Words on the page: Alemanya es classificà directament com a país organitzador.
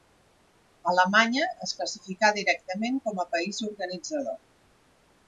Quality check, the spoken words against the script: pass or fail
pass